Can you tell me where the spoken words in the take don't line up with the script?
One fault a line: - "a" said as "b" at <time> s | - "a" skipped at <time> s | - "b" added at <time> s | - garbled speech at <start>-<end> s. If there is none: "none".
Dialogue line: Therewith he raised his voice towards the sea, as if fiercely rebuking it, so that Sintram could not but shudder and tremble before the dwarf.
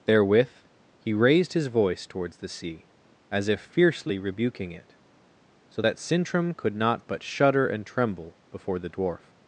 none